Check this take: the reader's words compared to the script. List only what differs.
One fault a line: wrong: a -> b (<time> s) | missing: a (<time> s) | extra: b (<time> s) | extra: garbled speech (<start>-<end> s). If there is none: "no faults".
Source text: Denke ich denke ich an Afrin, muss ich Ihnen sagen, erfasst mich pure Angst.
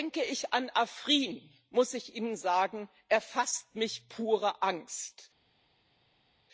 missing: denke ich (0.5 s)